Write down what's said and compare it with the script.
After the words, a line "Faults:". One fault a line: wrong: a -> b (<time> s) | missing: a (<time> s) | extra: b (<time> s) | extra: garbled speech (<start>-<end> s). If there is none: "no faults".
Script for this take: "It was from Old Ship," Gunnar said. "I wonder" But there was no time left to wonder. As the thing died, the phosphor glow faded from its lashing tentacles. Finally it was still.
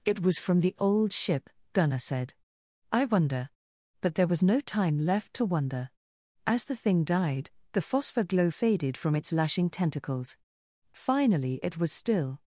"It was from the Old Ship," Gunnar said. "I wonder" But there was no time left to wonder. As the thing died, the phosphor glow faded from its lashing tentacles. Finally it was still.
Faults:
extra: the (0.6 s)